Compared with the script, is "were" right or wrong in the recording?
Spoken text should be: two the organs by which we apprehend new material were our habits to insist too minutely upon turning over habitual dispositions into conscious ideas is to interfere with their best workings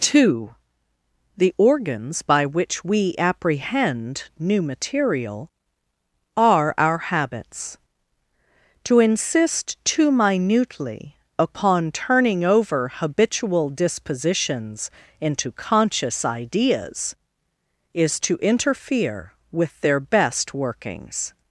wrong